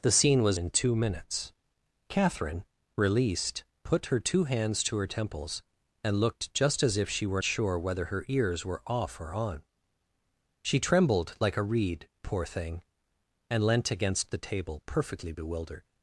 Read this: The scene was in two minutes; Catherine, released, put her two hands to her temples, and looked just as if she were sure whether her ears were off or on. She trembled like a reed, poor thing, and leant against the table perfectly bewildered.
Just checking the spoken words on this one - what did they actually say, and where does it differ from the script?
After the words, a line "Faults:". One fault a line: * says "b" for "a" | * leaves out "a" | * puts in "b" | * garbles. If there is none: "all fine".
The scene was in two minutes; Catherine, released, put her two hands to her temples, and looked just as if she were sure whether her ears were off or on. She trembled like a reed, poor thing, and leant against the table perfectly bewildered.
Faults:
all fine